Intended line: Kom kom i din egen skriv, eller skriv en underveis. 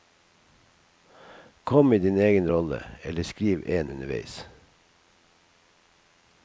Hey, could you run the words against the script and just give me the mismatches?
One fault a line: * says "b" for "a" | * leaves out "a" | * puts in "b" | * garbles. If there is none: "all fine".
* leaves out "kom"
* says "rolle" for "skriv"